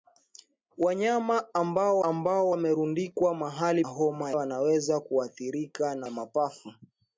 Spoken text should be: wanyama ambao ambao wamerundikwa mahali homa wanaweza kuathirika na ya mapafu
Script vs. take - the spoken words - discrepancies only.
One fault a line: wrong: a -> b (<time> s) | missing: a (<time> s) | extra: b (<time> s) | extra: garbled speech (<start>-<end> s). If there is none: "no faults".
no faults